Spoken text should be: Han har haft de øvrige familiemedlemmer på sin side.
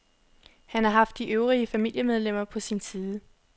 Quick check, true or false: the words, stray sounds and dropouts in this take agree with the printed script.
true